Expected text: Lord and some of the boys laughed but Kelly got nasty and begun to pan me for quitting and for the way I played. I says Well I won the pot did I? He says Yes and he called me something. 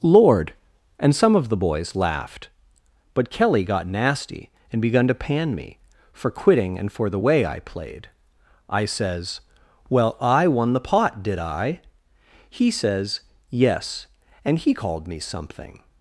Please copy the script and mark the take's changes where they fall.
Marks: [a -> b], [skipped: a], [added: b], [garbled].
Lord and some of the boys laughed but Kelly got nasty and begun to pan me for quitting and for the way I played. I says Well I won the pot did I? He says Yes and he called me something.